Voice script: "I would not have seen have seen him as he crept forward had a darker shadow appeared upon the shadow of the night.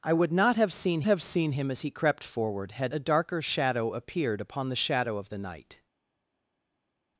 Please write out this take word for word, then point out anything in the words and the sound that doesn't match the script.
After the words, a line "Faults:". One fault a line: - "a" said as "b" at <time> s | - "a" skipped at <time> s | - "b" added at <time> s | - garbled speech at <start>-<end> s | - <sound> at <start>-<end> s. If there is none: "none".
"I would not have seen have seen him as he crept forward had a darker shadow appeared upon the shadow of the night.
Faults:
none